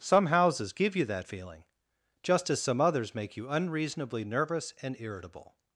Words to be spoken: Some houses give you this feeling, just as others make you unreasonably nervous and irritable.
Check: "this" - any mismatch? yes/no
yes